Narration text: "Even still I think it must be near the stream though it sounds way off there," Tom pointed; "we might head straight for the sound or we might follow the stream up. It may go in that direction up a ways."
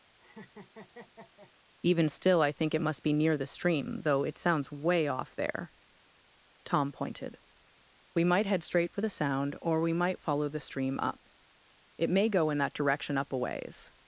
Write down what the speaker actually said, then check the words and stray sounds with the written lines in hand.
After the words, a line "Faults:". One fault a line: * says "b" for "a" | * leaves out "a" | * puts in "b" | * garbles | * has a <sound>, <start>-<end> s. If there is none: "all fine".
"Even still I think it must be near the stream though it sounds way off there," Tom pointed; "we might head straight for the sound or we might follow the stream up. It may go in that direction up a ways."
Faults:
* has a laugh, 0.2-1.5 s